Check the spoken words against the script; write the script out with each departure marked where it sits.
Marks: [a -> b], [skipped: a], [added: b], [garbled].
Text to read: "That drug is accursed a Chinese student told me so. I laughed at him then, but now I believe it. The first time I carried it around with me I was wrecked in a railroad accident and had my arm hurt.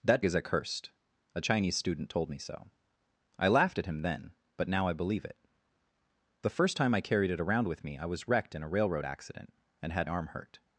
"That [skipped: drug] is accursed a Chinese student told me so. I laughed at him then, but now I believe it. The first time I carried it around with me I was wrecked in a railroad accident and had [skipped: my] arm hurt.